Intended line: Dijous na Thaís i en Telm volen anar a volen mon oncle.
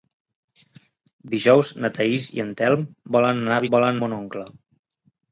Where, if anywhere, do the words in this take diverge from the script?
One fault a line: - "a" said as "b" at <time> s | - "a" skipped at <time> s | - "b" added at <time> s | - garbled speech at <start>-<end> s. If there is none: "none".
none